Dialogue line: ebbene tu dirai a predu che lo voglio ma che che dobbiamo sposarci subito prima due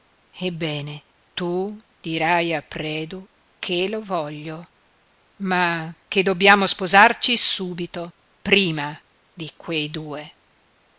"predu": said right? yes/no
yes